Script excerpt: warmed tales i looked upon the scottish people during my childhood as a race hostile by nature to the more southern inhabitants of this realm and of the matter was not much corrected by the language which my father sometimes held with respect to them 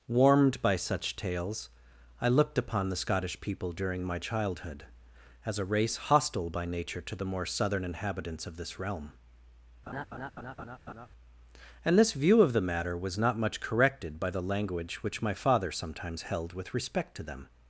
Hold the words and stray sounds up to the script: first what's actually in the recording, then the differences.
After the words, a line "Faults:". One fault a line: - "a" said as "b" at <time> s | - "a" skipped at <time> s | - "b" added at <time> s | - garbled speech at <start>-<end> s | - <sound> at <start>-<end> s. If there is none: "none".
warmed by such tales i looked upon the scottish people during my childhood as a race hostile by nature to the more southern inhabitants of this realm and this view of the matter was not much corrected by the language which my father sometimes held with respect to them
Faults:
- "by such" added at 0.6 s
- laugh at 9.9-11.1 s
- "this view" added at 12.0 s